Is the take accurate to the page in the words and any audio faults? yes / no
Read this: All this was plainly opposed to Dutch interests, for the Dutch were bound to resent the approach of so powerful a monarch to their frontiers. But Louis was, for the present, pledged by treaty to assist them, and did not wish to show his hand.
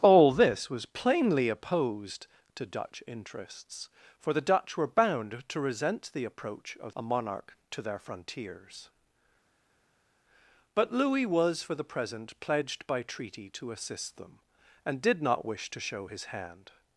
no